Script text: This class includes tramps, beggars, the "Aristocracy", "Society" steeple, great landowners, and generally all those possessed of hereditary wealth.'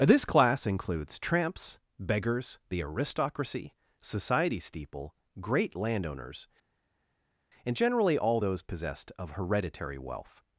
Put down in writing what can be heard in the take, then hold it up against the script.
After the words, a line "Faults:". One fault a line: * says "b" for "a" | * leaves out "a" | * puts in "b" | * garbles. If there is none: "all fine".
This class includes tramps, beggars, the "Aristocracy", "Society" steeple, great landowners, and generally all those possessed of hereditary wealth.'
Faults:
all fine